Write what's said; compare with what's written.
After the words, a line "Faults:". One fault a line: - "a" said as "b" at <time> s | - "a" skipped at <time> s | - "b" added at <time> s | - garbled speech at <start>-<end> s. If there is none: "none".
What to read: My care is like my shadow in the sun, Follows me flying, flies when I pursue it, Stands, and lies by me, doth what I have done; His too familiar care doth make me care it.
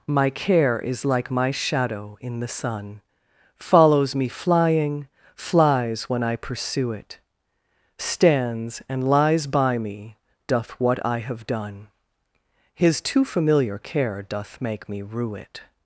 My care is like my shadow in the sun, Follows me flying, flies when I pursue it, Stands, and lies by me, doth what I have done; His too familiar care doth make me rue it.
Faults:
- "care" said as "rue" at 15.0 s